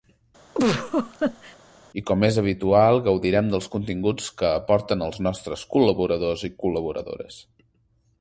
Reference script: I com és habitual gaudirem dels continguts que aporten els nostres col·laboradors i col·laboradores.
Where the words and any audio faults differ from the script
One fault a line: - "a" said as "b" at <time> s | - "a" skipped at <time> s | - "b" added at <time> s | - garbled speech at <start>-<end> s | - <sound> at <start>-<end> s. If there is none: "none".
- laugh at 0.5-1.6 s